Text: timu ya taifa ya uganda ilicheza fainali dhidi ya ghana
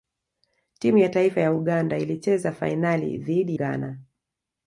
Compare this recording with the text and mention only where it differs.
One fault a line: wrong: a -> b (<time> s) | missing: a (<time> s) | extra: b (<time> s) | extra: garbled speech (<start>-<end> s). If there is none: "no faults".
missing: ya (3.6 s)